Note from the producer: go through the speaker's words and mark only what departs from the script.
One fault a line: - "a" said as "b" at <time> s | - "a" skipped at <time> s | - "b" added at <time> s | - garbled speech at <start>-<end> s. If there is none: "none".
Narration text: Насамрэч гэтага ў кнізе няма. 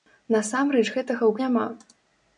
- "кнізе" skipped at 1.3 s